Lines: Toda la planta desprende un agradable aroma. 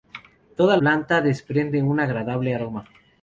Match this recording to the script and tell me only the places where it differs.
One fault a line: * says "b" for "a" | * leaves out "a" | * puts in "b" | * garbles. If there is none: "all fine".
* leaves out "la"